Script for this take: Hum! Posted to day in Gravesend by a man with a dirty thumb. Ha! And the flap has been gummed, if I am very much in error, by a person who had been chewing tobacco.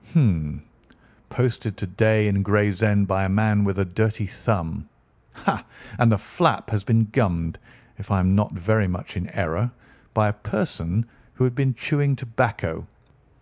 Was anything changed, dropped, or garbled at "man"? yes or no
no